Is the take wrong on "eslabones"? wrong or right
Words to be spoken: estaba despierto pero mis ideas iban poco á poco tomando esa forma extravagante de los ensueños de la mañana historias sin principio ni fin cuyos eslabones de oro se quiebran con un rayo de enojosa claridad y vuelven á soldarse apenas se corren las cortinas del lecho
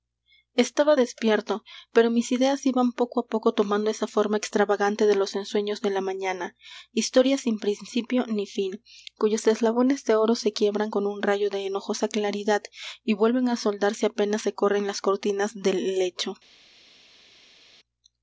right